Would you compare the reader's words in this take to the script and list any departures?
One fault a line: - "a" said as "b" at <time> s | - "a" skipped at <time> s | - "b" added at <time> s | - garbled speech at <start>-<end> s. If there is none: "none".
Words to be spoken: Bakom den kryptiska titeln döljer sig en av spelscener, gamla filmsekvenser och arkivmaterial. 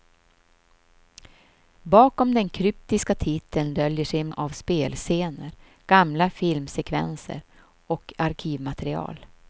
none